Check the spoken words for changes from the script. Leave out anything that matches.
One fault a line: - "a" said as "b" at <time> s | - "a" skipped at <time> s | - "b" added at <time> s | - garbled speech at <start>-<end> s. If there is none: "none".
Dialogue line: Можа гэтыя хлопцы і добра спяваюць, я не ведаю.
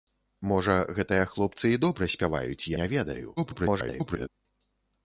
- "я" skipped at 2.7 s
- garbled speech at 3.4-4.3 s